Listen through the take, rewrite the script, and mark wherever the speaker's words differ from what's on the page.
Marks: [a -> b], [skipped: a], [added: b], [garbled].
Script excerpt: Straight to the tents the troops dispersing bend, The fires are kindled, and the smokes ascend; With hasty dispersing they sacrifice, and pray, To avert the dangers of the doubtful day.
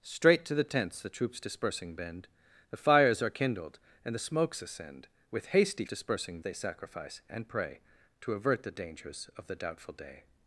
Straight to the tents the troops dispersing bend, The fires are kindled, and the smokes ascend; With hasty dispersing they sacrifice, and pray, To avert the dangers of the doubtful day.